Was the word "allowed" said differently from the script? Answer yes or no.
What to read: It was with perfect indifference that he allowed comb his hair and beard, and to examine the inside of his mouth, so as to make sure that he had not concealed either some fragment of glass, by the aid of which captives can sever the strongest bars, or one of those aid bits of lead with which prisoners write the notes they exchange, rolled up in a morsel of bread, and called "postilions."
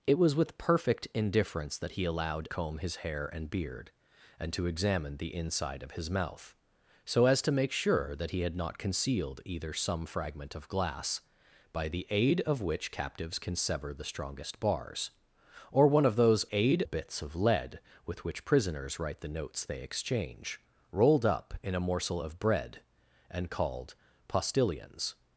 no